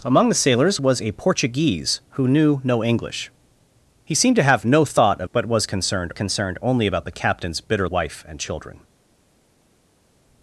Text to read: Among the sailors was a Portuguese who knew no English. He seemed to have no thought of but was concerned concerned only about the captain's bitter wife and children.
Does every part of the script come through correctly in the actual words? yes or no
yes